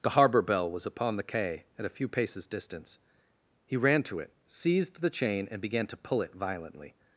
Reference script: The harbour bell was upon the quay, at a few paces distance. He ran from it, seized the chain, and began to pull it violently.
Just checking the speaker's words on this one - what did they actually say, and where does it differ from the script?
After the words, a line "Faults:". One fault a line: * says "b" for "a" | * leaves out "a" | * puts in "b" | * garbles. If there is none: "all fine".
The harbour bell was upon the quay, at a few paces distance. He ran to it, seized the chain, and began to pull it violently.
Faults:
* says "to" for "from"